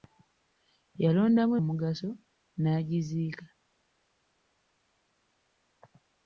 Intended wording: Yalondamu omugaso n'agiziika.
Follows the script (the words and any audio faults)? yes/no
yes